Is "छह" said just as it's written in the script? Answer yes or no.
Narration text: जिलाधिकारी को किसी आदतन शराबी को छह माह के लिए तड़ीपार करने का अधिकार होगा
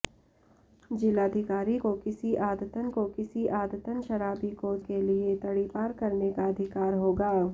no